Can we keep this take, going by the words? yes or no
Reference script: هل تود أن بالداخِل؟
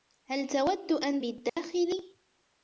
yes